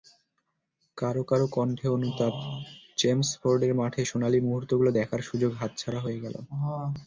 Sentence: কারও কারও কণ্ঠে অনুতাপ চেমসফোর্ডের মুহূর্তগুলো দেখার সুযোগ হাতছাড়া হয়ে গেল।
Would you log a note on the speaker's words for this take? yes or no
yes